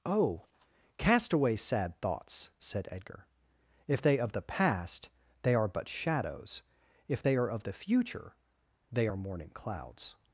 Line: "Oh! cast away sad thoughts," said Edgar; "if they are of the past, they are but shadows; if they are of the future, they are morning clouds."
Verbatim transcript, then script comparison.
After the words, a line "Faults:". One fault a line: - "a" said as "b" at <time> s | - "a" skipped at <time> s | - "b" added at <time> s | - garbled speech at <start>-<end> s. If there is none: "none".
"Oh! cast away sad thoughts," said Edgar; "if they of the past, they are but shadows; if they are of the future, they are morning clouds."
Faults:
- "are" skipped at 4.2 s